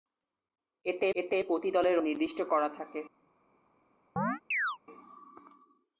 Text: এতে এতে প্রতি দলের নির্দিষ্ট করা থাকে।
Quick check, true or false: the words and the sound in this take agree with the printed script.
false